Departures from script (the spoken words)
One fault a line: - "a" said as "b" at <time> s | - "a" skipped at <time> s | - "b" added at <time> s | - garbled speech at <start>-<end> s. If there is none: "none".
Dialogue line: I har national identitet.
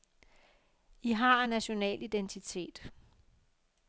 none